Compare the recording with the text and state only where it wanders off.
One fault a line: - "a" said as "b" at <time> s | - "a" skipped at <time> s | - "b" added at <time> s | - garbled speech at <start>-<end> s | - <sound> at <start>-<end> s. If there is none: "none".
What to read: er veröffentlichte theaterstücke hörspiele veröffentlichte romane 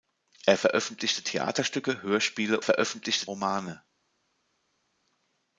none